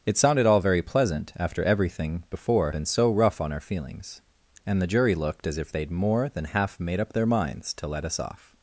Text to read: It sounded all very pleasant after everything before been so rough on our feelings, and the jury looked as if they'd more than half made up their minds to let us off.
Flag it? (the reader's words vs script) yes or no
no